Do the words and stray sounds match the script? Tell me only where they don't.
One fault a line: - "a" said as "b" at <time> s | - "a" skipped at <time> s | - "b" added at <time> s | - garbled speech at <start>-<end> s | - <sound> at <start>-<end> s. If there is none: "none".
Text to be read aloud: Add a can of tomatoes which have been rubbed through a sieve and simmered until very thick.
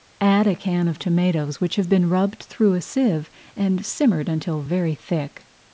none